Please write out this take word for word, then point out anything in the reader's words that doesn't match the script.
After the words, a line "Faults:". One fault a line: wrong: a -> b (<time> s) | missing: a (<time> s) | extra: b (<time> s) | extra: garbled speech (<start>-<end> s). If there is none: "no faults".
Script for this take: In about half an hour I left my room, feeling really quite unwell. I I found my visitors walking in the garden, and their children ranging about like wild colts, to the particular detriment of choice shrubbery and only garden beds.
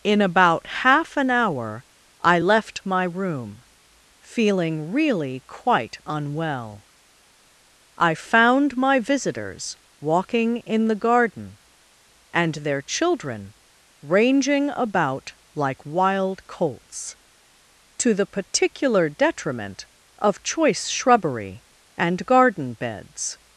In about half an hour I left my room, feeling really quite unwell. I found my visitors walking in the garden, and their children ranging about like wild colts, to the particular detriment of choice shrubbery and garden beds.
Faults:
missing: I (8.1 s)
missing: only (22.3 s)